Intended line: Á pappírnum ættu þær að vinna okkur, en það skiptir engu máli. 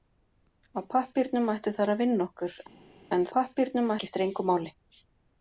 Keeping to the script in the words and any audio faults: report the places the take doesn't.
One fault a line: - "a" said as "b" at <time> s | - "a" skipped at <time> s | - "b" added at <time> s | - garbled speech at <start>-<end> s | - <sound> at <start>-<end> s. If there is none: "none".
- "það" said as "pappírnum" at 3.3 s